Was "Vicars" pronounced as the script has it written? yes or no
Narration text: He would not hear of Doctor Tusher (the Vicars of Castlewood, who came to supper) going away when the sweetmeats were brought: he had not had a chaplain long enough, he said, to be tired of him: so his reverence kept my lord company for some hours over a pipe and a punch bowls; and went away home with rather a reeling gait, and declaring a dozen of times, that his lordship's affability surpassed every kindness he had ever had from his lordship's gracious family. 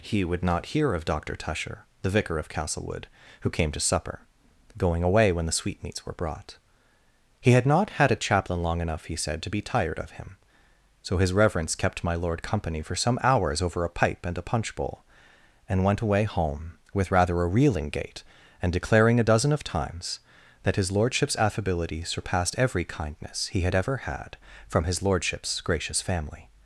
no